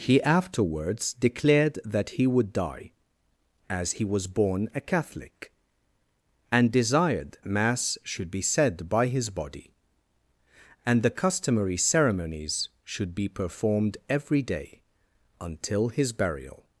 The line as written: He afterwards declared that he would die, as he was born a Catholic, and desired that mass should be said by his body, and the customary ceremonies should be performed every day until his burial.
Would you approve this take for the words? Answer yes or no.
no